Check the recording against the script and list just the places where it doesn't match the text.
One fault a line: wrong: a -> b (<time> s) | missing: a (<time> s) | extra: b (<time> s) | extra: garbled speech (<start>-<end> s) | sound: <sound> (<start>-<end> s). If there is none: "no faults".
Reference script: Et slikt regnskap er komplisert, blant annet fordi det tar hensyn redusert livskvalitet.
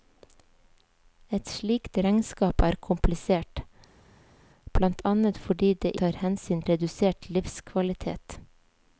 no faults